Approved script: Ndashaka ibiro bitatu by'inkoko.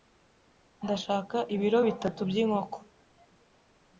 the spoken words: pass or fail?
pass